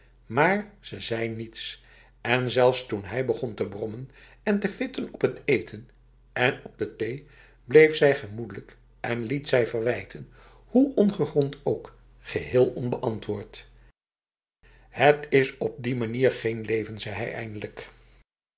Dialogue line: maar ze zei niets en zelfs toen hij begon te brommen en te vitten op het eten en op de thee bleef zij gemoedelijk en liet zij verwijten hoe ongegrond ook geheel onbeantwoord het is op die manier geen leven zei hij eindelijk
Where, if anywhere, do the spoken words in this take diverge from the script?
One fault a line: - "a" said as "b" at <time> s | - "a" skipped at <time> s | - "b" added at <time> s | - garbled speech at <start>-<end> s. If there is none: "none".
none